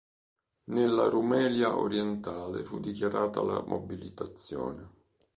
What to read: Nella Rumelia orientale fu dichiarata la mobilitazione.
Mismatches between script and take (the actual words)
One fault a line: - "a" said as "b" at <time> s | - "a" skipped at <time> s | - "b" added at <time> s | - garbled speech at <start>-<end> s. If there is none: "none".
none